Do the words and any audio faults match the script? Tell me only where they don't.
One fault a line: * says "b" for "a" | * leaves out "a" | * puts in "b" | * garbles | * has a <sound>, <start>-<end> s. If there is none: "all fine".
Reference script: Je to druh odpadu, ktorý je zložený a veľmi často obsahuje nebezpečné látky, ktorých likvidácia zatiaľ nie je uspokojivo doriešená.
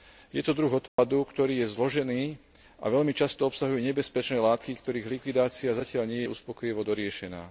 * has a dropout, 0.9-1.0 s